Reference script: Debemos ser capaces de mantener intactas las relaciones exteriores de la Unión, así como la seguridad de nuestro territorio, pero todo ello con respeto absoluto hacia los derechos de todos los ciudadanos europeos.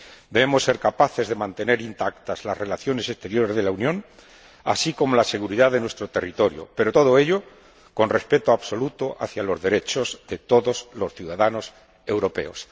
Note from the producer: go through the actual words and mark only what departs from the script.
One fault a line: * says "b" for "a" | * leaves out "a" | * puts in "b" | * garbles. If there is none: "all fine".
all fine